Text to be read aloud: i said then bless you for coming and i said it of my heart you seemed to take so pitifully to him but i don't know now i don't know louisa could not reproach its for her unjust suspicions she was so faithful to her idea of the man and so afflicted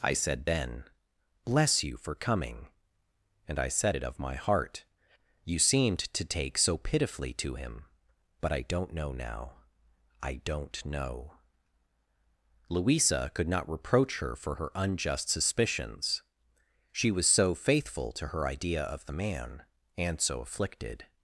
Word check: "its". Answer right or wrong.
wrong